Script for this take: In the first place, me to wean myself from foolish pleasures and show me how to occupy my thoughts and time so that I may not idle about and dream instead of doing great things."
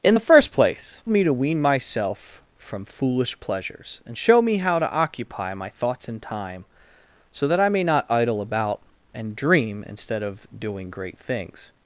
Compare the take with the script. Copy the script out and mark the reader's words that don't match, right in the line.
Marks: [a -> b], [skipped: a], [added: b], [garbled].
In the first place, me to wean myself from foolish pleasures and show me how to occupy my thoughts and time so that I may not idle about and dream instead of doing great things."